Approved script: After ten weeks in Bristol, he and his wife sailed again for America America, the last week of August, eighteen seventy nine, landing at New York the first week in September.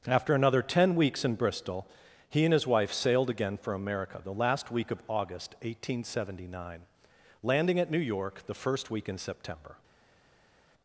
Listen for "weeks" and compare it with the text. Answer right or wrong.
right